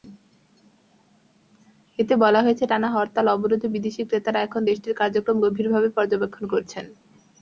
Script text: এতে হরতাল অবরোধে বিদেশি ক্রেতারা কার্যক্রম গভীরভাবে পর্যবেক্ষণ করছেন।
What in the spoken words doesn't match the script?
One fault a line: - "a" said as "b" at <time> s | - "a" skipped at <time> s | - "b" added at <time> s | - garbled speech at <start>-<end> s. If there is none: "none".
- "বলা হয়েছে টানা" added at 2.2 s
- "এখন দেশটির" added at 4.4 s